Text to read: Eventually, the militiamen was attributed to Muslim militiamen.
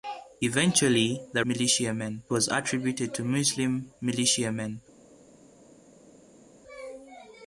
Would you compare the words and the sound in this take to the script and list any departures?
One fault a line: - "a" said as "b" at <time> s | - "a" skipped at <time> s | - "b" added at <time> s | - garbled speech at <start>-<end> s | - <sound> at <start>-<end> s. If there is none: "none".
none